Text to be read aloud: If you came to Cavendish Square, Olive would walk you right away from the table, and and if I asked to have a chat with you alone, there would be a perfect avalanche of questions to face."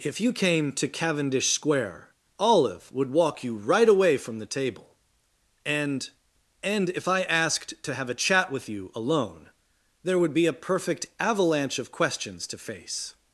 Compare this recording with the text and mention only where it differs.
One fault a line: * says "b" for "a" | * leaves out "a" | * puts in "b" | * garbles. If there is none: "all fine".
all fine